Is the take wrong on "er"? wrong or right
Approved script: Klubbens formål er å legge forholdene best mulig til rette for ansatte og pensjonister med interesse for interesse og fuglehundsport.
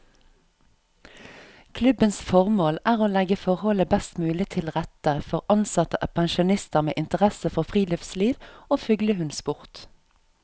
right